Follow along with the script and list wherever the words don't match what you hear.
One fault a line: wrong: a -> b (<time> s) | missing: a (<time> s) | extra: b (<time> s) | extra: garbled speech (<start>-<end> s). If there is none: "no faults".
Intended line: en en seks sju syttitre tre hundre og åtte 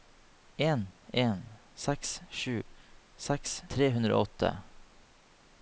wrong: syttitre -> seks (3.2 s)